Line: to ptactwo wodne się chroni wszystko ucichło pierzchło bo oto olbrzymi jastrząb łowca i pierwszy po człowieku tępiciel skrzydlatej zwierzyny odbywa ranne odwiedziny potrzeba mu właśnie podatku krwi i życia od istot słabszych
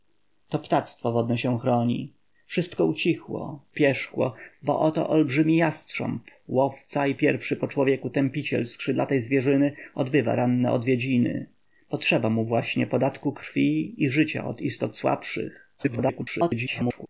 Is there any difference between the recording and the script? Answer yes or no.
yes